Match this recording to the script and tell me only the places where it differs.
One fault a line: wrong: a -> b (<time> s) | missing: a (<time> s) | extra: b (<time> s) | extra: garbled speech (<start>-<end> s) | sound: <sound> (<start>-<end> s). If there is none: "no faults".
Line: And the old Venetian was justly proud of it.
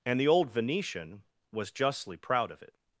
no faults